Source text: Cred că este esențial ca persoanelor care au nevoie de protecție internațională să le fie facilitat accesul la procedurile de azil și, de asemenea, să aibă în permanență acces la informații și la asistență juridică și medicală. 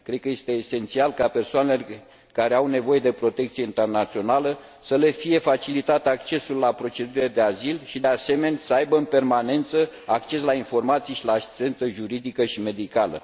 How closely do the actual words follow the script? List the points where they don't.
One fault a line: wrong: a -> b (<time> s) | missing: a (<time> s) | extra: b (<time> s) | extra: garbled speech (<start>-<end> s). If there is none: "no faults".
no faults